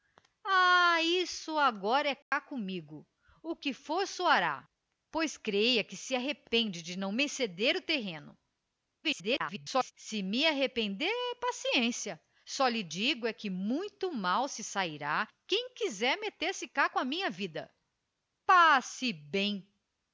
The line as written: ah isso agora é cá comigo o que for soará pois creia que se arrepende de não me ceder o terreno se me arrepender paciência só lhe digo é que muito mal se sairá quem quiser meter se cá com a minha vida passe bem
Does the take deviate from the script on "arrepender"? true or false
false